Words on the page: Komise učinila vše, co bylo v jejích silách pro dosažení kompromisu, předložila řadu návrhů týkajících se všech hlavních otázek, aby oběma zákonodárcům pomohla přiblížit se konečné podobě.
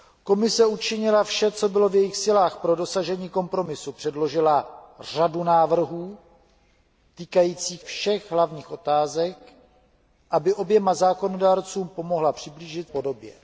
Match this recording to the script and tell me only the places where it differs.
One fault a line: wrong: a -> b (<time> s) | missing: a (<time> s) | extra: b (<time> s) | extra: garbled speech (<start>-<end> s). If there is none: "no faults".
missing: se (7.8 s)
missing: se konečné (12.9 s)